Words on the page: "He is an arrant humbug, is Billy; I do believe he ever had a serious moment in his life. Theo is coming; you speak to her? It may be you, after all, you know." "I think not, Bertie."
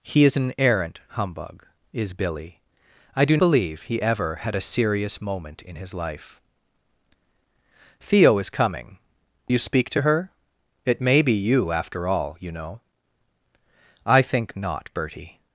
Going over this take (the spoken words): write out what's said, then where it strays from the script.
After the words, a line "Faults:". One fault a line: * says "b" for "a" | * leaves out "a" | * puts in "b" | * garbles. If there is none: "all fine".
"He is an arrant humbug, is Billy; I do believe he ever had a serious moment in his life. Theo is coming; you speak to her? It may be you, after all, you know." "I think not, Bertie."
Faults:
all fine